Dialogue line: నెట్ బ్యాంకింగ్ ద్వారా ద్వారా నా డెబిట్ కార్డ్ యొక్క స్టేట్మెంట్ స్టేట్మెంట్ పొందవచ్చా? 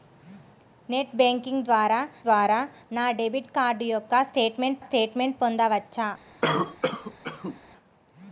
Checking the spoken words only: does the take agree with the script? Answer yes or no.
yes